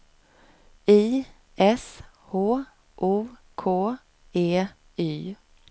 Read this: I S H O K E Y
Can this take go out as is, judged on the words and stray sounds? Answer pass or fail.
pass